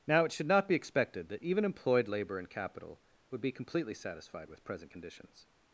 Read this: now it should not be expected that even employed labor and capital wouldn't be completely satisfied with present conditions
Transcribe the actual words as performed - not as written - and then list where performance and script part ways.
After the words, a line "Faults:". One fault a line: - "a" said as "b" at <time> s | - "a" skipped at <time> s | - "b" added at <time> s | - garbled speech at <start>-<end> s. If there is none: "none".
now it should not be expected that even employed labor and capital would be completely satisfied with present conditions
Faults:
- "wouldn't" said as "would" at 3.3 s